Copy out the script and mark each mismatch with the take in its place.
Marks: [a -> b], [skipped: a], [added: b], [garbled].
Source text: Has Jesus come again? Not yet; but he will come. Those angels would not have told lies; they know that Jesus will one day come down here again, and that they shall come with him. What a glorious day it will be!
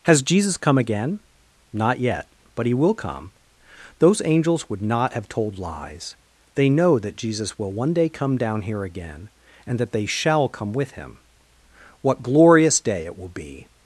Has Jesus come again? Not yet; but he will come. Those angels would not have told lies; they know that Jesus will one day come down here again, and that they shall come with him. What [skipped: a] glorious day it will be!